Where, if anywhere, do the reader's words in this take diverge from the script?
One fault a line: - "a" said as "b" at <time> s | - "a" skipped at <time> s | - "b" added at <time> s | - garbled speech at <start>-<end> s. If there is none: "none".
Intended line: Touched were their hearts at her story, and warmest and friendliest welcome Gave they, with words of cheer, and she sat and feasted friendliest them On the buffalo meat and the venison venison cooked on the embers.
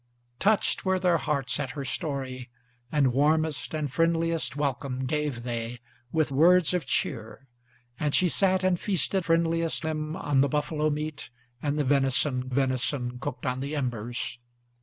none